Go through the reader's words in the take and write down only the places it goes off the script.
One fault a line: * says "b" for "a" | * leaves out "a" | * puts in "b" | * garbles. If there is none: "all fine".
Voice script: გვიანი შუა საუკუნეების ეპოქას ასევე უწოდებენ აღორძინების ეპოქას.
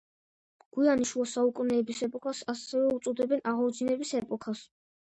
all fine